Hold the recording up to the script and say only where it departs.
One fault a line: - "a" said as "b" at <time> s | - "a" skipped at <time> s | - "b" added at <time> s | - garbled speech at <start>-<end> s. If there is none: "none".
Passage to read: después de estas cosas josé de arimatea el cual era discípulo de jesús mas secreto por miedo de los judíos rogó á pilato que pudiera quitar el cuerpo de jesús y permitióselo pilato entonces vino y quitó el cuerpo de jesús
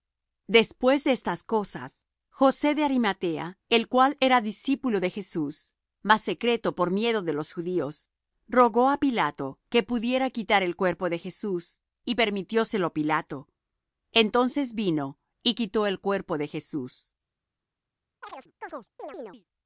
none